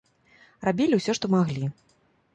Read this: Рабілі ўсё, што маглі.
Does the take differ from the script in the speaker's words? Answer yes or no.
no